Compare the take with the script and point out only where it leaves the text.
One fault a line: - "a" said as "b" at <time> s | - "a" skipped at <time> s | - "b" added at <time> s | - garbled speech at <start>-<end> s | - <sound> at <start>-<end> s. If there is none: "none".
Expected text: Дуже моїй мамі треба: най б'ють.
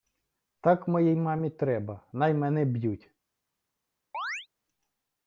- "Дуже" said as "Так" at 0.6 s
- "мене" added at 2.3 s
- chirp at 4.1-4.5 s